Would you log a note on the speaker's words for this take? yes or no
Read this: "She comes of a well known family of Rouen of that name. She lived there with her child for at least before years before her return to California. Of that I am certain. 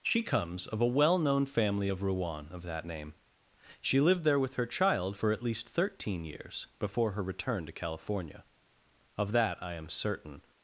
yes